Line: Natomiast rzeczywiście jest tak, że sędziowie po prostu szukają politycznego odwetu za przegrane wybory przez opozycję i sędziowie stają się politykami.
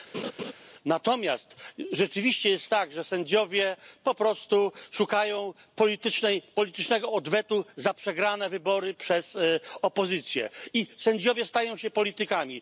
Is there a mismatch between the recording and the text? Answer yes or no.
no